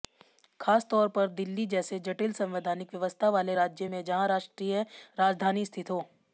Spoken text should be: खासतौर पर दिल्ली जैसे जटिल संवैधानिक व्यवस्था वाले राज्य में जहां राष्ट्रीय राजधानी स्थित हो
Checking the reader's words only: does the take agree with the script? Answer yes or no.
yes